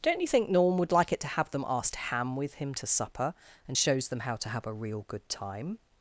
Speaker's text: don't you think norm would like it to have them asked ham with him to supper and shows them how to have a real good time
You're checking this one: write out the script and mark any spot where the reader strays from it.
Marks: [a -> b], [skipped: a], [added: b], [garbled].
don't you think norm would like it to have them asked ham with him to supper and shows them how to have a real good time